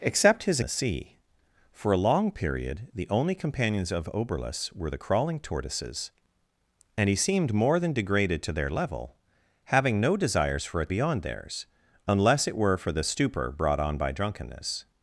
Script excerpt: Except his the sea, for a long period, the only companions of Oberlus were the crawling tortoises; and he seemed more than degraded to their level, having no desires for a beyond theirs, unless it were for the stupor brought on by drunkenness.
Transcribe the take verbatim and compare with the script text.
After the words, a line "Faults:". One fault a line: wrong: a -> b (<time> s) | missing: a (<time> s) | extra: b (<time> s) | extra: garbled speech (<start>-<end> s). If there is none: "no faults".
Except his the sea, for a long period, the only companions of Oberlus were the crawling tortoises; and he seemed more than degraded to their level, having no desires for a beyond theirs, unless it were for the stupor brought on by drunkenness.
Faults:
no faults